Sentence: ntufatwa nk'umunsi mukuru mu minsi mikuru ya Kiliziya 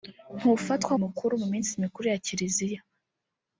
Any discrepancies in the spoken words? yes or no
yes